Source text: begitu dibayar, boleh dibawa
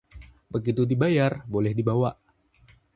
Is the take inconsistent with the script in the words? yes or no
no